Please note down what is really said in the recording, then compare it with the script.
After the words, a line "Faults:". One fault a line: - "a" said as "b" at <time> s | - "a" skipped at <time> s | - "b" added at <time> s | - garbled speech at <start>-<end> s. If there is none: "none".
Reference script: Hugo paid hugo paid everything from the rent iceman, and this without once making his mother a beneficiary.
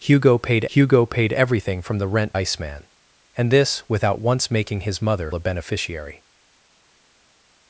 Hugo paid hugo paid everything from the rent iceman, and this without once making his mother a beneficiary.
Faults:
none